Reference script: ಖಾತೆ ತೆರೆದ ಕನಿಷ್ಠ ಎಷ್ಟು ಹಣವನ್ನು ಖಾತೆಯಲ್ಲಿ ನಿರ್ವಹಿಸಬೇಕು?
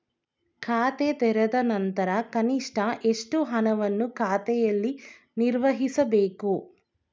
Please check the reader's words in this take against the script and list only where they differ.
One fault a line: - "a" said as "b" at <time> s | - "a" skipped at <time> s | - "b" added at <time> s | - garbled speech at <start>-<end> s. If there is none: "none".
- "ನಂತರ" added at 1.6 s